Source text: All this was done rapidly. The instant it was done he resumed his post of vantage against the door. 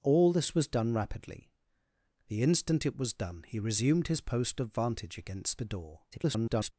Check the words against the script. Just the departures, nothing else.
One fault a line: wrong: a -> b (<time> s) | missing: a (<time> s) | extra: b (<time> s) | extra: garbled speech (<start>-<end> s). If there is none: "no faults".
extra: garbled speech (6.1-6.7 s)